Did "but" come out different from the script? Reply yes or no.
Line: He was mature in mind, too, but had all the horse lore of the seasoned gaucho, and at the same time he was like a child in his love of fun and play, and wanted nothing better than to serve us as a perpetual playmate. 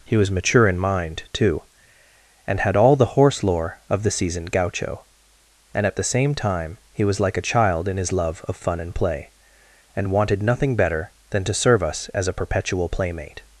yes